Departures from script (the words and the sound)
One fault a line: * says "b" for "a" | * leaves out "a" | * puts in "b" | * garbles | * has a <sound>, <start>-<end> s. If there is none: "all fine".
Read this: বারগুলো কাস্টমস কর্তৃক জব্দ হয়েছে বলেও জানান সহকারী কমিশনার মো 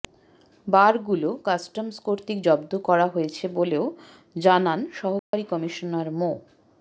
* puts in "করা"
* has a dropout, 5.2-5.3 s